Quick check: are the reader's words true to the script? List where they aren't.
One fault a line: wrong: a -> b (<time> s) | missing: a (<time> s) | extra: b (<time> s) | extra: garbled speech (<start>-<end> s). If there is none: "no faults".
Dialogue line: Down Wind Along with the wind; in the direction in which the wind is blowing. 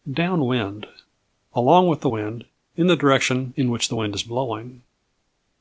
no faults